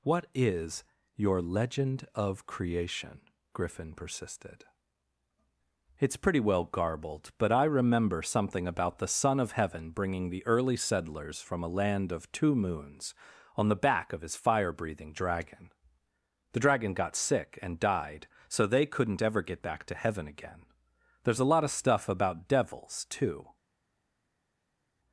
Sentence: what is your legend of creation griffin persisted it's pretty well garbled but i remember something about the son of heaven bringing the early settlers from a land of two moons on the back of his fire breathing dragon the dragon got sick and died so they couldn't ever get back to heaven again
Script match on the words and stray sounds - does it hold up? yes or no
no